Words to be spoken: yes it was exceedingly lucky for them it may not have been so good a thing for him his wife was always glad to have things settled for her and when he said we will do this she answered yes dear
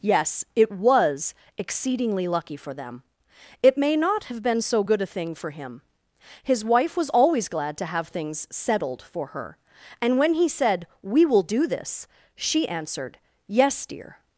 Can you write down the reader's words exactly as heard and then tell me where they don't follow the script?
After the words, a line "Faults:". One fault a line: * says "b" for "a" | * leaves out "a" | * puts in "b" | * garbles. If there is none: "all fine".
yes it was exceedingly lucky for them it may not have been so good a thing for him his wife was always glad to have things settled for her and when he said we will do this she answered yes dear
Faults:
all fine